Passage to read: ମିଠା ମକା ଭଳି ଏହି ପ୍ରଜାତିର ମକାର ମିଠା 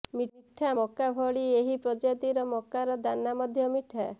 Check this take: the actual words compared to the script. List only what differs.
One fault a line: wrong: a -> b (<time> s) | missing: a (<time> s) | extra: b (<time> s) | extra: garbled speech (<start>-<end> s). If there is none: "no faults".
extra: ଦାନା ମଧ୍ୟ (3.0 s)